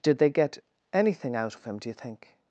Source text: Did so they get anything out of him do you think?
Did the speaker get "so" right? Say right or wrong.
wrong